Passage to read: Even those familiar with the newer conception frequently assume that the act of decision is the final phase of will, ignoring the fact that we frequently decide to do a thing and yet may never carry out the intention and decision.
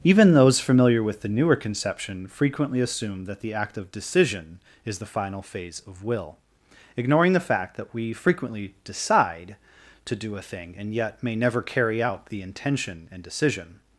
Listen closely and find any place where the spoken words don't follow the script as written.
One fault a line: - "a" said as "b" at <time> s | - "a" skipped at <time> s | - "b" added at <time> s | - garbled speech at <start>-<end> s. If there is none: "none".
none